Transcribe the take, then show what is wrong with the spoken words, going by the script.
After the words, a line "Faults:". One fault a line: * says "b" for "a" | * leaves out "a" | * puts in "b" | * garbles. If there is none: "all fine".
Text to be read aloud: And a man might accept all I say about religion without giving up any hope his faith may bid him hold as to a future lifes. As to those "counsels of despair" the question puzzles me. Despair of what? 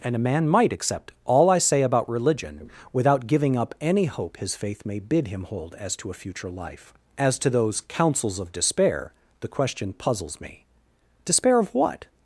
And a man might accept all I say about religion without giving up any hope his faith may bid him hold as to a future life. As to those "counsels of despair" the question puzzles me. Despair of what?
Faults:
* says "life" for "lifes"